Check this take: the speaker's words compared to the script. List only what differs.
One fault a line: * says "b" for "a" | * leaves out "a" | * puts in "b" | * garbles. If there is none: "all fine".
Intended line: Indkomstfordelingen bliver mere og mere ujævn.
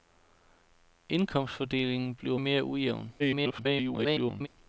* leaves out "mere"
* garbles